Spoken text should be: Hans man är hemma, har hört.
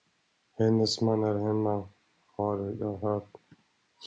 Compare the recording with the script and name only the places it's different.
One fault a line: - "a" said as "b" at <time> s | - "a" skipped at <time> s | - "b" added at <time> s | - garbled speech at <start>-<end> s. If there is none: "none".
- "Hans" said as "Hennes" at 0.6 s
- "jag" added at 2.8 s